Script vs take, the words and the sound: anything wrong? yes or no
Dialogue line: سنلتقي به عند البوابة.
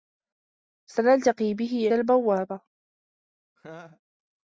yes